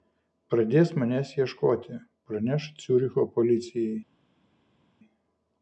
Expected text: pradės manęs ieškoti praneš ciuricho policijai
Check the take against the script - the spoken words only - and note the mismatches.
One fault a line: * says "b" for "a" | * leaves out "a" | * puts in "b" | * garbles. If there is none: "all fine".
all fine